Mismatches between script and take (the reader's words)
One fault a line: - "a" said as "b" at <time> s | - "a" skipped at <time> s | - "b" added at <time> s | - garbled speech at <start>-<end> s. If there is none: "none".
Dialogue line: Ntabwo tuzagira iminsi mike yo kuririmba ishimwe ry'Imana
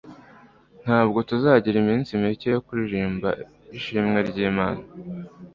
none